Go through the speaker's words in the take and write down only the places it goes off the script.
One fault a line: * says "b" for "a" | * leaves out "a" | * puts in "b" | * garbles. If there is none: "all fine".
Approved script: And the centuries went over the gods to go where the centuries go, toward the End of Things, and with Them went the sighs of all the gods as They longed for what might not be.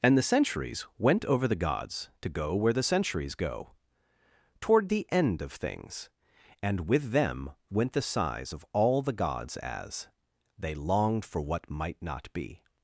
all fine